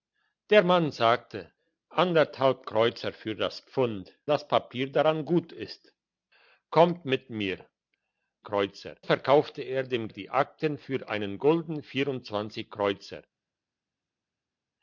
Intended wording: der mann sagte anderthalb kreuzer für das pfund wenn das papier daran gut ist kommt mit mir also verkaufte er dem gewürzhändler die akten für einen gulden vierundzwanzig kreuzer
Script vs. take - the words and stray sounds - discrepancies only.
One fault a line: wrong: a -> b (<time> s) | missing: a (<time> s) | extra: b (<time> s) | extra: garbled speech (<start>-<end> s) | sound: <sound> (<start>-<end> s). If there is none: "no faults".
missing: wenn (4.2 s)
wrong: also -> kreuzer (8.4 s)
missing: gewürzhändler (10.1 s)